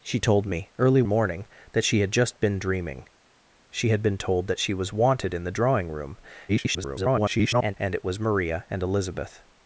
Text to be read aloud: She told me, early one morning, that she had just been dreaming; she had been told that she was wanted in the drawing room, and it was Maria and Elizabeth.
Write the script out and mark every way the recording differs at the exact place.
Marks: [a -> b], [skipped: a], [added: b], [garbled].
She told me, early [skipped: one] morning, that she had just been dreaming; she had been told that she was wanted in the drawing room, [garbled] and it was Maria and Elizabeth.